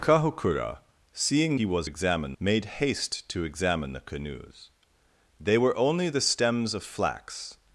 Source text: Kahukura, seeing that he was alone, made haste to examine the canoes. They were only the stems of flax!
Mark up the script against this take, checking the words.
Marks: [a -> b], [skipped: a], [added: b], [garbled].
Kahukura, seeing [skipped: that] he was [alone, -> examine] made haste to examine the canoes. They were only the stems of flax!